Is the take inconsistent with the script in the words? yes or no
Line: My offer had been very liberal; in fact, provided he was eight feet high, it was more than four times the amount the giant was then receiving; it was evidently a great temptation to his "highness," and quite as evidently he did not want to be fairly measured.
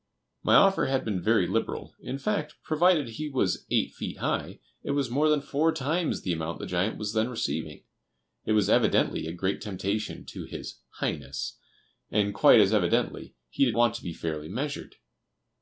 yes